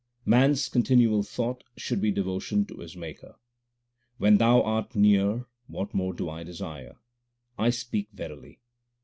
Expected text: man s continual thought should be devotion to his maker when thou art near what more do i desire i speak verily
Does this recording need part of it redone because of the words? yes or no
no